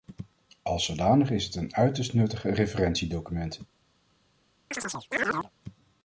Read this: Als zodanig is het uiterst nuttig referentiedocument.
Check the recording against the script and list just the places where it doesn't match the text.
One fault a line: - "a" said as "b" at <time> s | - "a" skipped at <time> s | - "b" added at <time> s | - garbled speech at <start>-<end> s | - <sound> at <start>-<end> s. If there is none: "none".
- "een" added at 1.6 s
- chirp at 4.7-5.5 s